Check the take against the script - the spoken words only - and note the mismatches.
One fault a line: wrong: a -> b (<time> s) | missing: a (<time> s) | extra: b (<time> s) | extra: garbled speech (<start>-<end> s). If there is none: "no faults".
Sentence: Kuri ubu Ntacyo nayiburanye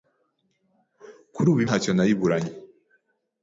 no faults